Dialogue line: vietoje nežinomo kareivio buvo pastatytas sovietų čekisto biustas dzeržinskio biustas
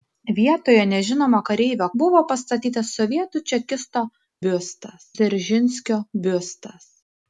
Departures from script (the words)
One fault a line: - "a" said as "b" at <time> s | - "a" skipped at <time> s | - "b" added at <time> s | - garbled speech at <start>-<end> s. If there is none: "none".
none